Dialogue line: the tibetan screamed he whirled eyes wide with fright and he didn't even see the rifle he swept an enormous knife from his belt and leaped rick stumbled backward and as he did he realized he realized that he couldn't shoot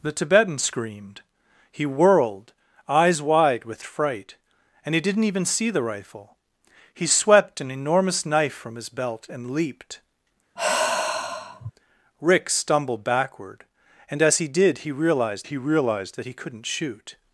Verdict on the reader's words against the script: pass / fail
pass